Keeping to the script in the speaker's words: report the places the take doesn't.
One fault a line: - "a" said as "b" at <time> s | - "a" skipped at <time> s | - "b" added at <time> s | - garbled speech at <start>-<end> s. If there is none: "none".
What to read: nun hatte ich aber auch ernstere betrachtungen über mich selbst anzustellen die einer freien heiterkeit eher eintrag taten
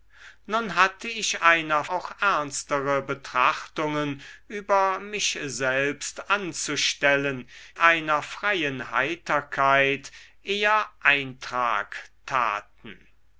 - "aber" said as "einer" at 1.4 s
- "die" skipped at 7.5 s